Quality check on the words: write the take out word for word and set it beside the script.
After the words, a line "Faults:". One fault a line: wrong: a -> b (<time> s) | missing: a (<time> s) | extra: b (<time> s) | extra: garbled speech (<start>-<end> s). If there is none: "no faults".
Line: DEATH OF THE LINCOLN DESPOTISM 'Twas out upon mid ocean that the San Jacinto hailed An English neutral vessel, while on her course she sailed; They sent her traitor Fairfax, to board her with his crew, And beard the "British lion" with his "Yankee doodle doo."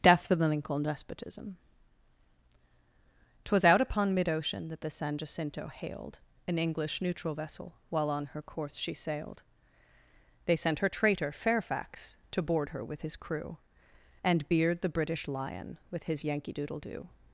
DEATH OF THE LINCOLN DESPOTISM 'Twas out upon mid ocean that the San Jacinto hailed An English neutral vessel, while on her course she sailed; They sent her traitor Fairfax, to board her with his crew, And beard the "British lion" with his "Yankee doodle doo."
Faults:
no faults